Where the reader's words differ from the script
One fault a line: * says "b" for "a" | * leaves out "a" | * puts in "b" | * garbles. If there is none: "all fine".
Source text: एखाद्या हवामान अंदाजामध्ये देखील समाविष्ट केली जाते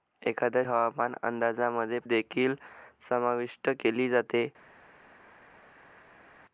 all fine